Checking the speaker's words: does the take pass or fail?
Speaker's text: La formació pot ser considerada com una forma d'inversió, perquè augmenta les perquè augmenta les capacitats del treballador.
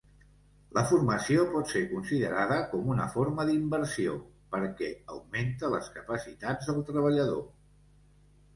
fail